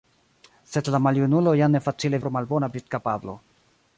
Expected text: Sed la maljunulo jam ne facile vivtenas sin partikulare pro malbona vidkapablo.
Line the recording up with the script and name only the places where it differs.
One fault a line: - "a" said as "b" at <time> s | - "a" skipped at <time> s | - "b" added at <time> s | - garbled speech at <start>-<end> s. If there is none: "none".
- "vivtenas sin partikulare" skipped at 2.2 s